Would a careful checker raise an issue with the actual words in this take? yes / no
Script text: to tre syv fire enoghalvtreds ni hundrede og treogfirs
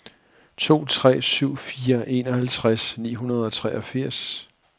no